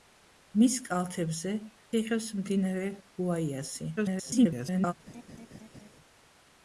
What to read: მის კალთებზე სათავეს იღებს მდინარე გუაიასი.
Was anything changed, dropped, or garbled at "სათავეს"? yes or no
yes